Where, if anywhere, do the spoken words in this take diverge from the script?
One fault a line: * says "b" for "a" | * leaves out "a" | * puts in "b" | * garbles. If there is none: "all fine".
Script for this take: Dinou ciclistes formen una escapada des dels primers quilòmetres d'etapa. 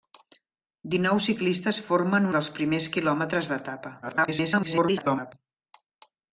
* leaves out "una escapada des"
* garbles